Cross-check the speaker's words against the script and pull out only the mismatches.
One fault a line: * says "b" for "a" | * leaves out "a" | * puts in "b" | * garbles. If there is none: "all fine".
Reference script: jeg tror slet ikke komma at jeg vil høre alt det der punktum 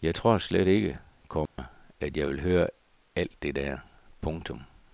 all fine